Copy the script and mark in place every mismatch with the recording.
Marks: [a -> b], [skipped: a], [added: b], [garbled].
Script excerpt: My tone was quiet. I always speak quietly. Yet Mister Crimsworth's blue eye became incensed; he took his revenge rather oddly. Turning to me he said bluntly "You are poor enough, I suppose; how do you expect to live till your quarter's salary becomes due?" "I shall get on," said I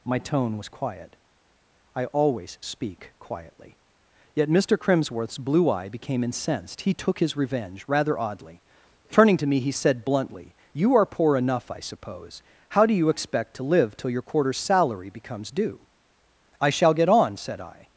My tone was quiet. I always speak quietly. Yet Mister Crimsworth's blue eye became incensed; he took his revenge rather oddly. Turning to me he said bluntly "You are poor enough, I suppose; how do you expect to live till your quarter's salary becomes due?" "I shall get on," said I